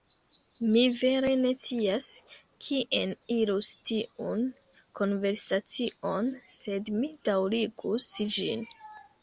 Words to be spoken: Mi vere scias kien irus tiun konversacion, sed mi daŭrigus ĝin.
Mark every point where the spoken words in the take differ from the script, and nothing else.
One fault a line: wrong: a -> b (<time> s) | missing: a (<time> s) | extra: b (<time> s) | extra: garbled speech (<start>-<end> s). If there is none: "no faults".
extra: ne (1.4 s)